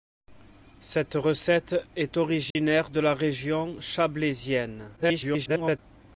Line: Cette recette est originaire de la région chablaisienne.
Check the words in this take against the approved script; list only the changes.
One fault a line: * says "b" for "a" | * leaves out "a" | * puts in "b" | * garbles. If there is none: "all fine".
* garbles